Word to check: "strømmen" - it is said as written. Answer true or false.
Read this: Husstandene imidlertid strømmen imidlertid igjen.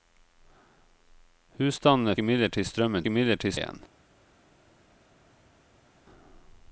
true